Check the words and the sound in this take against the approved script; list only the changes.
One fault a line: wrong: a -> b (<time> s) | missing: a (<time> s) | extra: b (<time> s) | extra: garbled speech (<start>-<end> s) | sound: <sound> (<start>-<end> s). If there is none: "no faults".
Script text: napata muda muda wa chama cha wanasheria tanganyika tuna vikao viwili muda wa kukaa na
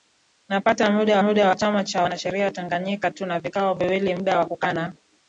no faults